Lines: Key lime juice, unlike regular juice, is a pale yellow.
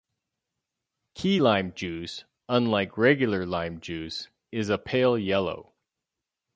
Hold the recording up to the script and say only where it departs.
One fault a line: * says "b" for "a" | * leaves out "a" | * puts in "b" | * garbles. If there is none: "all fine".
* puts in "lime"